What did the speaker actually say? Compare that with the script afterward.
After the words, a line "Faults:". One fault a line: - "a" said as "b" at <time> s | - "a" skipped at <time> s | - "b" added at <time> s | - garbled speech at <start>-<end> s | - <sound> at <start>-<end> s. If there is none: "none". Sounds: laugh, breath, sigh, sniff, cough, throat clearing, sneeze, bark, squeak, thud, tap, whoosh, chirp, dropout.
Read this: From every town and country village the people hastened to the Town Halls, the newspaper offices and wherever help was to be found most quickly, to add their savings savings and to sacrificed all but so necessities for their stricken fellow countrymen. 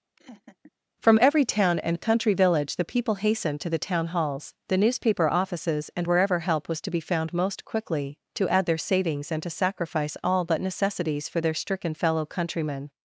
From every town and country village the people hastened to the Town Halls, the newspaper offices and wherever help was to be found most quickly, to add their savings and to sacrifice all but necessities for their stricken fellow countrymen.
Faults:
- laugh at 0.2-0.7 s
- "savings" skipped at 9.3 s
- "sacrificed" said as "sacrifice" at 9.5 s
- "so" skipped at 10.6 s